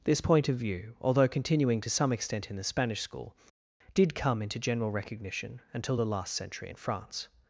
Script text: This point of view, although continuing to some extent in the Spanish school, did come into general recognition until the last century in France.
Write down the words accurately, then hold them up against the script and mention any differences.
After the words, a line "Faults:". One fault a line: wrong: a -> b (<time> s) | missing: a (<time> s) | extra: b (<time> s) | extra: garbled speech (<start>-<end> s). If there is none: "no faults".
This point of view, although continuing to some extent in the Spanish school, did come into general recognition until the last century in France.
Faults:
no faults